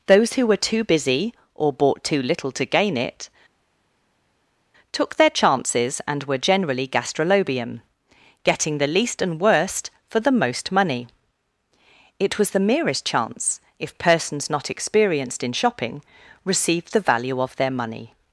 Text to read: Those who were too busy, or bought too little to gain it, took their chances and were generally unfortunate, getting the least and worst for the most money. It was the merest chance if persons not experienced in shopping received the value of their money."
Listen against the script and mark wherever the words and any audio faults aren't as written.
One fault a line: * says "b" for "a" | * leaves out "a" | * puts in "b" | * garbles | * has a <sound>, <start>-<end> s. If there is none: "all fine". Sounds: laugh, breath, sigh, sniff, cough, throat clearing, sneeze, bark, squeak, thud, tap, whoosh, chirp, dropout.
* says "gastrolobium" for "unfortunate"